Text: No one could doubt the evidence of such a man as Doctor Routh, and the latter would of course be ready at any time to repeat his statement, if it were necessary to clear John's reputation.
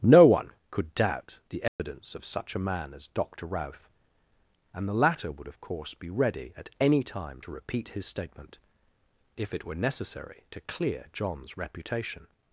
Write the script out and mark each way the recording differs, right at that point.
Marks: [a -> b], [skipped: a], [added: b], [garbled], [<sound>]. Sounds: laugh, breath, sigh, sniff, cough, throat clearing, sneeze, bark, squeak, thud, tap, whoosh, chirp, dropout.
No one could doubt the evidence [dropout] of such a man as Doctor Routh, and the latter would of course be ready at any time to repeat his statement, if it were necessary to clear John's reputation.